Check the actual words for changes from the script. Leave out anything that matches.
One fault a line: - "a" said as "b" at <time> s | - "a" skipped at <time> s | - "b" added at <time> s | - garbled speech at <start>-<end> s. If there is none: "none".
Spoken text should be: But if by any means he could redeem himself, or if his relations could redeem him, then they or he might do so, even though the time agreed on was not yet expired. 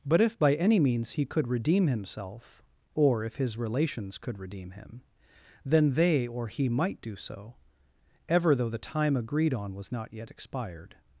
- "even" said as "ever" at 8.3 s